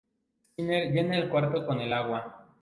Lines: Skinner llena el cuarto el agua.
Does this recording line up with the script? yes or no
no